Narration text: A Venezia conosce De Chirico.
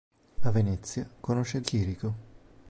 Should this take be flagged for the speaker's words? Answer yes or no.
yes